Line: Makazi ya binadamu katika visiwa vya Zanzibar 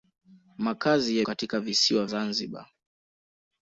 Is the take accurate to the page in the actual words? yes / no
no